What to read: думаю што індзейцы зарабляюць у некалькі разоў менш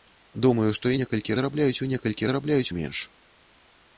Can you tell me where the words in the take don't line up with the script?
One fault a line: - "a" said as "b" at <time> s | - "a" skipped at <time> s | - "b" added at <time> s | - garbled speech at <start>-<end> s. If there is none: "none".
- "індзейцы" said as "некалькі" at 1.0 s
- "разоў" said as "зарабляюць" at 2.3 s